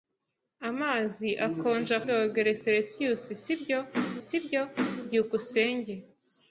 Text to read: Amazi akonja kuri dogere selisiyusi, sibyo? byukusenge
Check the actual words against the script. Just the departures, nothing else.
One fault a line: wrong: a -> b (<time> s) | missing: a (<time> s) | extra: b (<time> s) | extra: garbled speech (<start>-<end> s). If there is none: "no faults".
missing: kuri (2.0 s)
extra: sibyo (4.3 s)